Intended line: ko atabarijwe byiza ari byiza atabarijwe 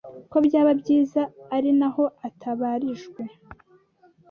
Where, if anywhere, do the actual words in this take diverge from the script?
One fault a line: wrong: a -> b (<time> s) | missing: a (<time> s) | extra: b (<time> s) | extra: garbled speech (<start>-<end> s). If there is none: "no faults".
wrong: atabarijwe -> byaba (0.5 s)
wrong: byiza -> naho (1.8 s)